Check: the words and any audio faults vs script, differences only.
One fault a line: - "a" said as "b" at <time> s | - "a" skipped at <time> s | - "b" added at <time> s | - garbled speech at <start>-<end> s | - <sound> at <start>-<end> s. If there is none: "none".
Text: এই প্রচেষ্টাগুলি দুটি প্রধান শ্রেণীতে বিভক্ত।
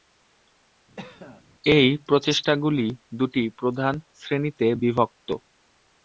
- cough at 1.0-1.4 s